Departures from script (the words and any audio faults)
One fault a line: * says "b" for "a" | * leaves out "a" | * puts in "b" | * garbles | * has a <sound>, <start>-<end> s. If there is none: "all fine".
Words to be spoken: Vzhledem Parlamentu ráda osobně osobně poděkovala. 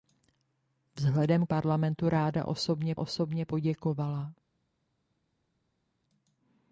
all fine